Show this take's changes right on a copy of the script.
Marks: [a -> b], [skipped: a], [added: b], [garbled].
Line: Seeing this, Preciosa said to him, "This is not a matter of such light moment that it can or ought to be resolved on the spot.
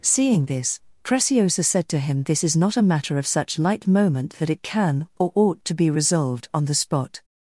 Seeing this, Preciosa said to him, "This is not a matter of such light moment that it can or ought to be resolved on the spot.